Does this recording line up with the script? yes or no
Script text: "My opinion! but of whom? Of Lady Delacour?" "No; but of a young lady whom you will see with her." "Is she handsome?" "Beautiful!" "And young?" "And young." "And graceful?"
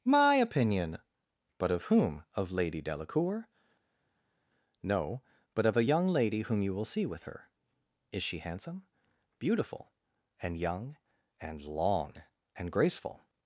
no